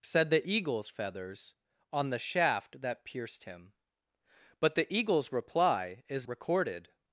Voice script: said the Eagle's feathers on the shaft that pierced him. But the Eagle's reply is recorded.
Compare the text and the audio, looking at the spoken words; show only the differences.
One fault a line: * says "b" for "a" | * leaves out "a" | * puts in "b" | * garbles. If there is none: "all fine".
all fine